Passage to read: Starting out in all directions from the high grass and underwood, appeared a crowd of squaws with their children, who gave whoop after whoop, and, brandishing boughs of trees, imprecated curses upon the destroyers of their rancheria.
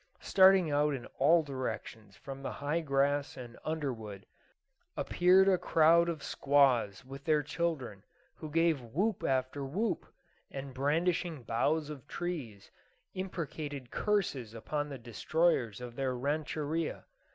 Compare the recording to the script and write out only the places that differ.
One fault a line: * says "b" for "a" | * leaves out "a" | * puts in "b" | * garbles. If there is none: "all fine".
all fine